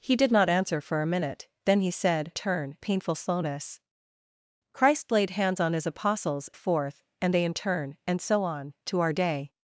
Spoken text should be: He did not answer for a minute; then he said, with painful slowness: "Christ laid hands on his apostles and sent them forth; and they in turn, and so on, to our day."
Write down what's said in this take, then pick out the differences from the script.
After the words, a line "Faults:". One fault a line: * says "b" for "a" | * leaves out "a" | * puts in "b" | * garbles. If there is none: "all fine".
He did not answer for a minute; then he said, turn painful slowness: "Christ laid hands on his apostles forth; and they in turn, and so on, to our day."
Faults:
* says "turn" for "with"
* leaves out "and sent them"